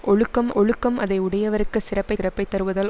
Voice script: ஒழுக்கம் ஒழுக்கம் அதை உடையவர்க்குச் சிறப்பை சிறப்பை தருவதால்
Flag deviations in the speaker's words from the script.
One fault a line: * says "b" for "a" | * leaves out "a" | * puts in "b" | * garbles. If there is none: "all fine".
all fine